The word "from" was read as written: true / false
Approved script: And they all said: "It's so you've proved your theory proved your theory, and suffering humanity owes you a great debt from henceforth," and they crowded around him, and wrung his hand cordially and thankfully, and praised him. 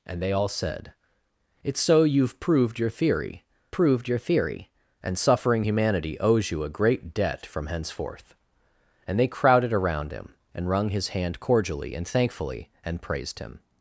true